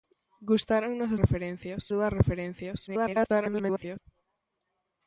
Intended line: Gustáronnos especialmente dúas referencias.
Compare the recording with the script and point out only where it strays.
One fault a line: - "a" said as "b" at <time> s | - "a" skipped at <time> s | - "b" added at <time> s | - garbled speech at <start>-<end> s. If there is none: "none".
- "especialmente" said as "referencias" at 1.2 s
- garbled speech at 2.9-4.0 s